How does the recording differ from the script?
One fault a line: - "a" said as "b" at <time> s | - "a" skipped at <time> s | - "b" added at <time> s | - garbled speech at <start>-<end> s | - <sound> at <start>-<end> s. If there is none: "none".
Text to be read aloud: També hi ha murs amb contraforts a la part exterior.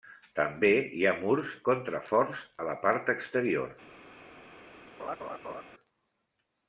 - "amb" skipped at 1.5 s
- laugh at 5.0-5.6 s